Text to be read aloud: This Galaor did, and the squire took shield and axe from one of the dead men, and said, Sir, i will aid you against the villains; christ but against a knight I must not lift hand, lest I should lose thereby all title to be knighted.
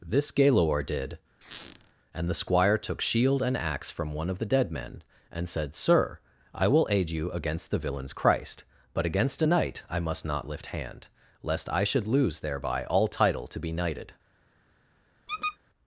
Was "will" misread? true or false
false